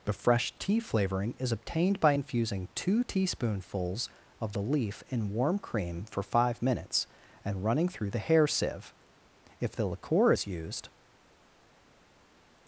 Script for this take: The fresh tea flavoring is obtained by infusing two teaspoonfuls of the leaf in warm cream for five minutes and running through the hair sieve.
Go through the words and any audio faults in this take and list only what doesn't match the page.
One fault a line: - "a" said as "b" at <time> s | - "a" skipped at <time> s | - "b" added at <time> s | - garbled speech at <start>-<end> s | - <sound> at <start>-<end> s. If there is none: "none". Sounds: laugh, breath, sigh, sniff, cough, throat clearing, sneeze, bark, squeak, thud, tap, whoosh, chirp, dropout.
- "If the liqueur is used" added at 9.6 s